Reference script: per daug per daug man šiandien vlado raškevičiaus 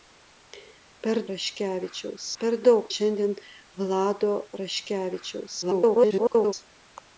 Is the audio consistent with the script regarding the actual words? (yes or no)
no